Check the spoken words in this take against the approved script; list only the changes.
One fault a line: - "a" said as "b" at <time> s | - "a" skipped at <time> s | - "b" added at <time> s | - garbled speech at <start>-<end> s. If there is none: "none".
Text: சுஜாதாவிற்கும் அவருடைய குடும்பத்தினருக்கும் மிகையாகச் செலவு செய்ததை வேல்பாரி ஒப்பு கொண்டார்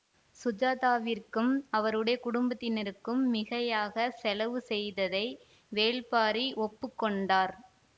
none